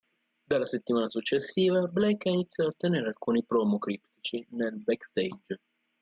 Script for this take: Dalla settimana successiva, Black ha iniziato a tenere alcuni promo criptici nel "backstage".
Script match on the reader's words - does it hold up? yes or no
yes